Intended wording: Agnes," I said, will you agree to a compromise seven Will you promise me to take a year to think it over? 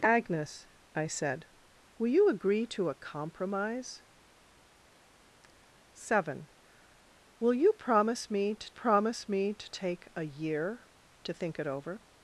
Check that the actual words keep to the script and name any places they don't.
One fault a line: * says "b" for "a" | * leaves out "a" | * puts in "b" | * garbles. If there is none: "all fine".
* puts in "promise me to"